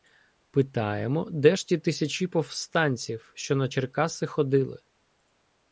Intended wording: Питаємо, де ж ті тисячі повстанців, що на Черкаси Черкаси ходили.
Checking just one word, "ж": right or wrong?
right